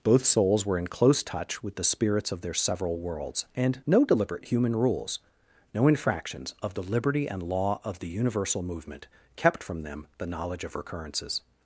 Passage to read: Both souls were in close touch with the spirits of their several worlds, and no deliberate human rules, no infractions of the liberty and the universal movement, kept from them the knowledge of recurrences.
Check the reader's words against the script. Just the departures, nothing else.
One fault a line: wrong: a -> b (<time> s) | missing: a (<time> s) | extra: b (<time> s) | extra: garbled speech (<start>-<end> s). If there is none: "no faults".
extra: law of (7.4 s)